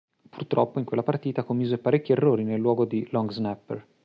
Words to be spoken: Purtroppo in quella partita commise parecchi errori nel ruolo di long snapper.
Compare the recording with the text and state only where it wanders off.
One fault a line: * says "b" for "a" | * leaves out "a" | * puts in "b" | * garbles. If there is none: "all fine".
all fine